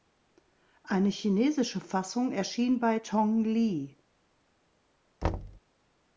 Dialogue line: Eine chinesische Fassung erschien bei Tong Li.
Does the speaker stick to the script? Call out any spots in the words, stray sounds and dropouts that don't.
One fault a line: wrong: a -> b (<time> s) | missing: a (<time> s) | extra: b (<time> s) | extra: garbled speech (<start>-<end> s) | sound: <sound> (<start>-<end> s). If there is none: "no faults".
sound: thud (5.2-5.6 s)